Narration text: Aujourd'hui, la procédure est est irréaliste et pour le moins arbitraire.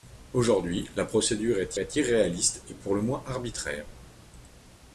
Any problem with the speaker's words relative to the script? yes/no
no